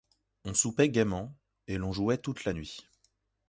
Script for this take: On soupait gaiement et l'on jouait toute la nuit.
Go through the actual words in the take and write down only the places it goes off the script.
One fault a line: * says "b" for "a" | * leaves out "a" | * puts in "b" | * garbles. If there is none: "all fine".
all fine